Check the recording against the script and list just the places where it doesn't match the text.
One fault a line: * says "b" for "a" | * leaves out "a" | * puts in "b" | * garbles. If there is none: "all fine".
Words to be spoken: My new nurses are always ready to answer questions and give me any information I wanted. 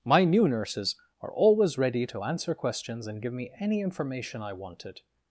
all fine